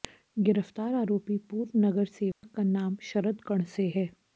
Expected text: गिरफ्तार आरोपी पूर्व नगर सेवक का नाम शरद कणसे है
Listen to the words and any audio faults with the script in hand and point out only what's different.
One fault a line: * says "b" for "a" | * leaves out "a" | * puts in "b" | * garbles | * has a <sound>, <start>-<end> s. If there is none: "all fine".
* has a dropout, 2.3-2.4 s